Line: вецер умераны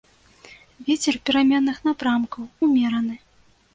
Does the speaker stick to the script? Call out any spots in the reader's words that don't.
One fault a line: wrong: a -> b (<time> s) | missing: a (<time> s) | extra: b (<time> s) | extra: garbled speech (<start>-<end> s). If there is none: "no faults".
extra: пераменных напрамкаў (1.3 s)